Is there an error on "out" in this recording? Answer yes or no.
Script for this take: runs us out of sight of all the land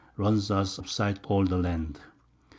yes